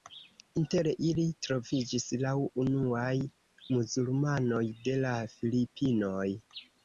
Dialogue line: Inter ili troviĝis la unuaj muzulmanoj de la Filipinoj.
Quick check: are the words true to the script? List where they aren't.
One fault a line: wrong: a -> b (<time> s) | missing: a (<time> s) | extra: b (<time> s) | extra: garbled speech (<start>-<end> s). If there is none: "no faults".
no faults